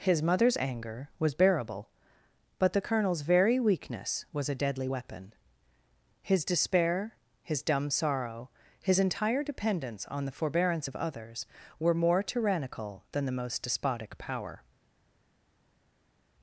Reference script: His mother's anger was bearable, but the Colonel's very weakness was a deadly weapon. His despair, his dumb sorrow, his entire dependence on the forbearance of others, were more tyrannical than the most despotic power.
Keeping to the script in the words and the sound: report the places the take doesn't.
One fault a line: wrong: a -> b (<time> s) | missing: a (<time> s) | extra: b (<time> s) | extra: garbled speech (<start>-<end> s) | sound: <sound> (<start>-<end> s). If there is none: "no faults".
no faults